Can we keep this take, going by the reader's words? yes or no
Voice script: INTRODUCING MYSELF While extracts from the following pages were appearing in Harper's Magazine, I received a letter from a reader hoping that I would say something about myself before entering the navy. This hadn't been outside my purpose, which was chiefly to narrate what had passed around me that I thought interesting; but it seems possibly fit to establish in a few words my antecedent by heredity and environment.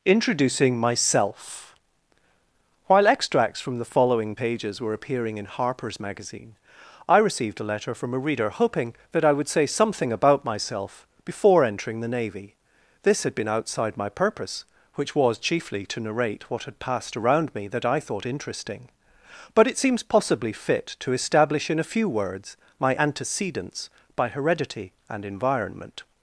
no